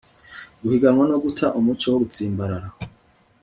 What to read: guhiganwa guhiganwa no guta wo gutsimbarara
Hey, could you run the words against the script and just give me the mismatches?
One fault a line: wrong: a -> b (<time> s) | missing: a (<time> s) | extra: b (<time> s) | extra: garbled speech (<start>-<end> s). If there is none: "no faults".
missing: guhiganwa (1.0 s)
extra: umuco (1.6 s)